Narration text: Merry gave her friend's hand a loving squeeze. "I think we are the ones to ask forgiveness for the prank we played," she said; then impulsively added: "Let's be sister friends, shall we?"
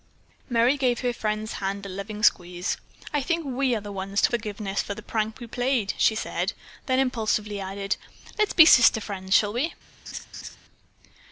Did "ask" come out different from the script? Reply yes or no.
yes